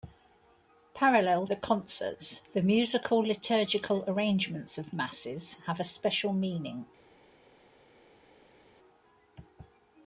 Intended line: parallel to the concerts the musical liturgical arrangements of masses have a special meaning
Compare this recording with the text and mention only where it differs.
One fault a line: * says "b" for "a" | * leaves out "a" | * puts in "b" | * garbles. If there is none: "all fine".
* leaves out "to"